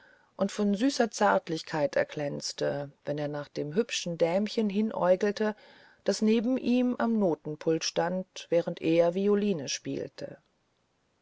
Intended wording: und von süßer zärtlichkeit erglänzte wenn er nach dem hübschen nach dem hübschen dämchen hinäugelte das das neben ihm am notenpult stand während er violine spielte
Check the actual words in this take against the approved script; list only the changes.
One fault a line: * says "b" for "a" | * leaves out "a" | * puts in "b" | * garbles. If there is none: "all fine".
* leaves out "nach dem hübschen"
* leaves out "das"